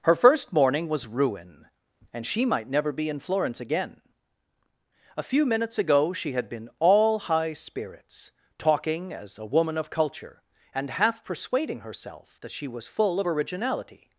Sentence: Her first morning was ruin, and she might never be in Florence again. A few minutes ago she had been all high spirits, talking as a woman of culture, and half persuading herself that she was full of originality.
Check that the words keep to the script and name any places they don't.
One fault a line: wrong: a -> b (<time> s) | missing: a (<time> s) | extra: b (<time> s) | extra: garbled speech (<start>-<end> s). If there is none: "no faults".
no faults